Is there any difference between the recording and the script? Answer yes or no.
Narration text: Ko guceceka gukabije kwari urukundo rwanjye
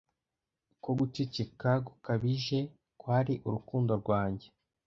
no